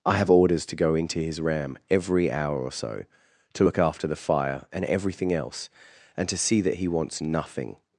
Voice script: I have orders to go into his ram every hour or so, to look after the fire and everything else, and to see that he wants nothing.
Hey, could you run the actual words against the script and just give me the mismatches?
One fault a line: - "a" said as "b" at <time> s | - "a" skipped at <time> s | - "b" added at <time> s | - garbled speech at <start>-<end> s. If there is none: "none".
none